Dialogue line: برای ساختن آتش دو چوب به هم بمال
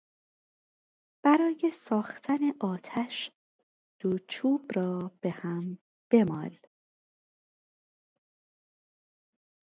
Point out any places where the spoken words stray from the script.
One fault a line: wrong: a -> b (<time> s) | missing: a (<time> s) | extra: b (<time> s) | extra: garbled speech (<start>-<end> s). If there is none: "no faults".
extra: را (4.8 s)